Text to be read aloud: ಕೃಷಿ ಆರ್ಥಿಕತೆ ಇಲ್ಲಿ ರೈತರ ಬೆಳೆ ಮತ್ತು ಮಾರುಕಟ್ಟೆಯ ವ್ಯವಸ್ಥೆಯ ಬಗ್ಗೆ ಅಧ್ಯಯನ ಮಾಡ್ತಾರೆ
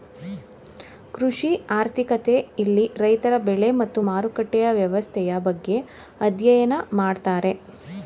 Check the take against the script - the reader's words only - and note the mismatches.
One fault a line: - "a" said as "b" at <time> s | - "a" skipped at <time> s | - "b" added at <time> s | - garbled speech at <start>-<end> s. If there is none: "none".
none